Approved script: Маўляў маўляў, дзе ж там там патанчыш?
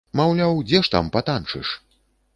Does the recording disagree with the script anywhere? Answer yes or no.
yes